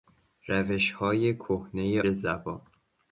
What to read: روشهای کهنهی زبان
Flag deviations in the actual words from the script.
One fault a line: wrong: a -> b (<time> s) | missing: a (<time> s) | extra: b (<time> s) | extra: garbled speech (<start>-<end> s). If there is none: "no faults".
no faults